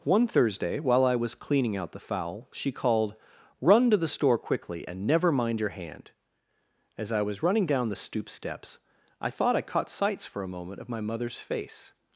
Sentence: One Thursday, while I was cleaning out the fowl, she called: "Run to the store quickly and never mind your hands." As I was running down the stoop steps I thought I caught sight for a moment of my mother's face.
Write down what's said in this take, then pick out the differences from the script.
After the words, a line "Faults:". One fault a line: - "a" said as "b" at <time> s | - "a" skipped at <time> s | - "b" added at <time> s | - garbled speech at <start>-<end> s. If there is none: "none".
One Thursday, while I was cleaning out the fowl, she called: "Run to the store quickly and never mind your hand." As I was running down the stoop steps I thought I caught sights for a moment of my mother's face.
Faults:
- "hands" said as "hand" at 5.7 s
- "sight" said as "sights" at 9.9 s